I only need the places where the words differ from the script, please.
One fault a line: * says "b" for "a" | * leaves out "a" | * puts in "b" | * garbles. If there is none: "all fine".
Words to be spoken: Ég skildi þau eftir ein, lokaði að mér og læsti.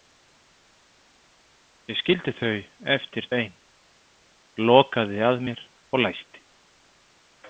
all fine